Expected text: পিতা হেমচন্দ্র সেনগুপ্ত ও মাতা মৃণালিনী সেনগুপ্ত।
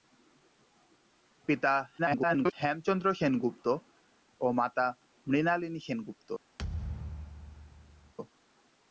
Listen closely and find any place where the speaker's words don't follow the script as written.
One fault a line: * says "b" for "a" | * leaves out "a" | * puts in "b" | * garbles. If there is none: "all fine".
* garbles